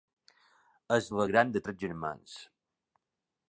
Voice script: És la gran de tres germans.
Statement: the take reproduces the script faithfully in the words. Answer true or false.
true